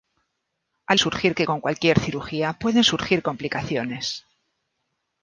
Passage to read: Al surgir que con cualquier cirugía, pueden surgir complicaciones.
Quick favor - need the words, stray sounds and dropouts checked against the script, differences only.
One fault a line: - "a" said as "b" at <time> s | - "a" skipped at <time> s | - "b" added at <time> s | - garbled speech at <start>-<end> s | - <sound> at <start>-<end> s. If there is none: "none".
none